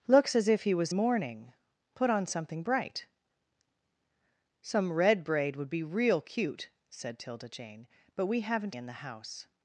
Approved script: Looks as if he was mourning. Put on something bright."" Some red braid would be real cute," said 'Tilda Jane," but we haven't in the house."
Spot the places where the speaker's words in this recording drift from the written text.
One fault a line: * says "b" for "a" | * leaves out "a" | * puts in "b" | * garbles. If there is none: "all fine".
all fine